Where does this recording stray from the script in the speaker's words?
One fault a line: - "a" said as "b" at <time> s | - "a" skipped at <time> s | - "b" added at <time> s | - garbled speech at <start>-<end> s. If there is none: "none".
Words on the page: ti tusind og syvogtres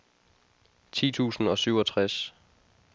none